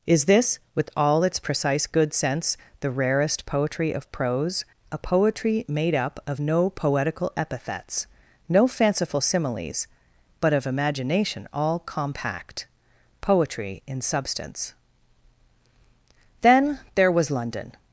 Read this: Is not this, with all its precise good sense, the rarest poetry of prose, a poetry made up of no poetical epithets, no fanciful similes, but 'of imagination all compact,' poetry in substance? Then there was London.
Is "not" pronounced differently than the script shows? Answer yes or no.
yes